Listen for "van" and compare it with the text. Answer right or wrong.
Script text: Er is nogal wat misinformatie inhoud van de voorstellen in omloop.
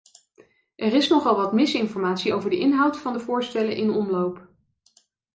right